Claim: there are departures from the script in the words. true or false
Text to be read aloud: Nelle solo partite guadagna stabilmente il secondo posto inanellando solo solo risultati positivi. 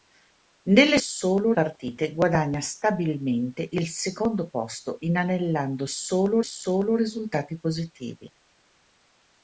false